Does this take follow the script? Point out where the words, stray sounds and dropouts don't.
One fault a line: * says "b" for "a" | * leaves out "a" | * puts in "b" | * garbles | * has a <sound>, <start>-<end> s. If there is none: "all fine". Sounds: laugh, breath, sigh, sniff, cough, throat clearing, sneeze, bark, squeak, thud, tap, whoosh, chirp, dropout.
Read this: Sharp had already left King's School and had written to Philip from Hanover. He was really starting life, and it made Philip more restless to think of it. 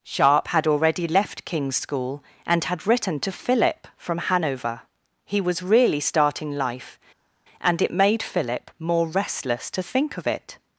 all fine